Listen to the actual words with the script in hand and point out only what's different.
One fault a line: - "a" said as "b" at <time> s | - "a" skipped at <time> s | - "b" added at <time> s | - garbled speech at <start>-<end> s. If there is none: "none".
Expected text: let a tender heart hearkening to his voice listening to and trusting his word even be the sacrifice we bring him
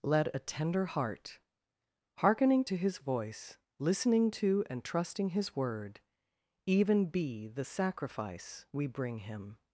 none